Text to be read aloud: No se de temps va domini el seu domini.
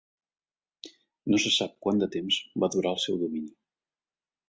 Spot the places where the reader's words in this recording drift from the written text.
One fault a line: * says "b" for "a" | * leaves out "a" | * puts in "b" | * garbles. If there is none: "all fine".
* puts in "sap quant"
* says "durar" for "domini"